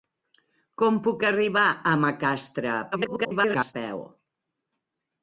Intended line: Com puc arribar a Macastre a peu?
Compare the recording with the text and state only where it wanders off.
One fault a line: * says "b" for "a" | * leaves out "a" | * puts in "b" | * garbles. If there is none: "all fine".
* garbles